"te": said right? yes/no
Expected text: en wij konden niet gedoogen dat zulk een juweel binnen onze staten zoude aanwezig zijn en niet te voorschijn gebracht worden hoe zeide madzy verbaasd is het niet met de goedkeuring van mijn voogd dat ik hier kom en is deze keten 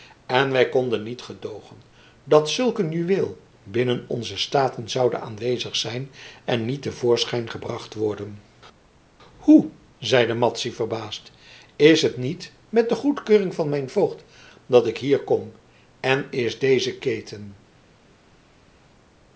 yes